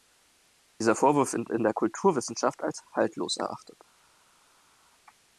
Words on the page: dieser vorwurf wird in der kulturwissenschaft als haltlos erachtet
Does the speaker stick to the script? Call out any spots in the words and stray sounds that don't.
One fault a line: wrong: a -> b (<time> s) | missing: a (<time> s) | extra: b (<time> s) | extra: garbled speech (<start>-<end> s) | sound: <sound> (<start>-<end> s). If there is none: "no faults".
no faults